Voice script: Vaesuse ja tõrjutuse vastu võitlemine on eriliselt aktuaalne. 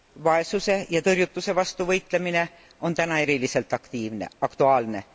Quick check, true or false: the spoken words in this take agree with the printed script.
false